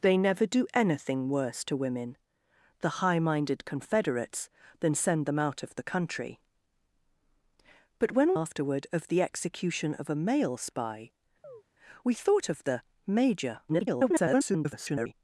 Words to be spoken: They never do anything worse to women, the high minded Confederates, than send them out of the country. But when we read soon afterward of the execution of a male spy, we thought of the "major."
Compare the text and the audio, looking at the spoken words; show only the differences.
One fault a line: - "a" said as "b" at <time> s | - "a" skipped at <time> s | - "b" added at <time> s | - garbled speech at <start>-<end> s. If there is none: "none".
- "we read soon" skipped at 8.3 s
- garbled speech at 13.7-15.1 s